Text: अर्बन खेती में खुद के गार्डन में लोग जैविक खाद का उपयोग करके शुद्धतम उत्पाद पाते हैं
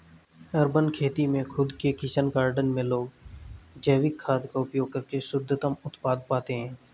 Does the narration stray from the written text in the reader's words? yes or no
yes